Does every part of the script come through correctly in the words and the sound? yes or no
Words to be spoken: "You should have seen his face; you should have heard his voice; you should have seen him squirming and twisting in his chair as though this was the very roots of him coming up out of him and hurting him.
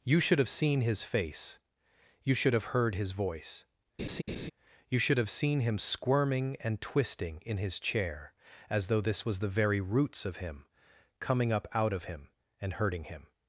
no